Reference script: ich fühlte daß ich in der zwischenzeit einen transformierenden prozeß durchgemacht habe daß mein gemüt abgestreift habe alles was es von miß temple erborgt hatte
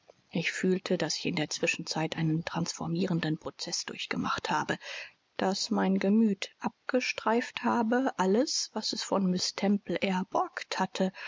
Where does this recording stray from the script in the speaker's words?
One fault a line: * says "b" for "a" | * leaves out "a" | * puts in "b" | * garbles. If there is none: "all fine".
all fine